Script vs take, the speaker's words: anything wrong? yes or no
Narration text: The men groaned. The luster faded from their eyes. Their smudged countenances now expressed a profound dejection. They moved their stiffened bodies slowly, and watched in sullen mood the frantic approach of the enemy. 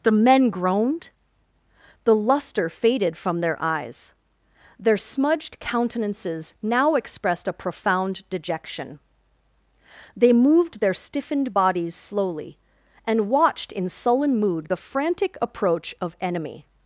yes